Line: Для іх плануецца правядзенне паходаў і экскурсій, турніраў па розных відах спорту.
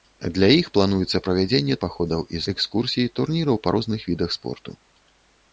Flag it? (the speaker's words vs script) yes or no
no